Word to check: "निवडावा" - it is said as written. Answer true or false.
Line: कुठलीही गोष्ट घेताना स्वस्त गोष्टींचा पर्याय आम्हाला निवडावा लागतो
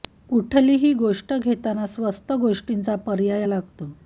false